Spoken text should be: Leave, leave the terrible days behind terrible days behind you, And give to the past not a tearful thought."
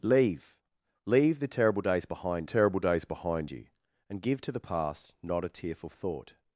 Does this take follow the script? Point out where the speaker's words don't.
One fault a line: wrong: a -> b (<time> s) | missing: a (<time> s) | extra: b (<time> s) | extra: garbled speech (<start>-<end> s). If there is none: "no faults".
no faults